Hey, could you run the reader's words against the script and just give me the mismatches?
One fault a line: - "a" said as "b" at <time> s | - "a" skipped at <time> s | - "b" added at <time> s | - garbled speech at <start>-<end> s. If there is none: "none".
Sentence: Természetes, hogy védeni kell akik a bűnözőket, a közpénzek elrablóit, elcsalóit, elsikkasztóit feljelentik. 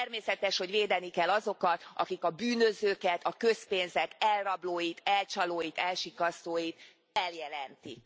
- "azokat" added at 1.3 s